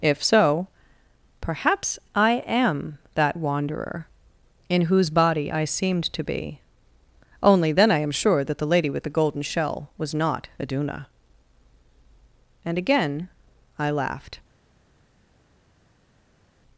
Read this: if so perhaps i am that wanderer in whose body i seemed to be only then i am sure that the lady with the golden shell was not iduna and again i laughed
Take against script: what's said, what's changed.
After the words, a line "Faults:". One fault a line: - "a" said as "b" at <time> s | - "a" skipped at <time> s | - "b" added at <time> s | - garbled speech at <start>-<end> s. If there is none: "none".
if so perhaps i am that wanderer in whose body i seemed to be only then i am sure that the lady with the golden shell was not iduna and again i laughed
Faults:
none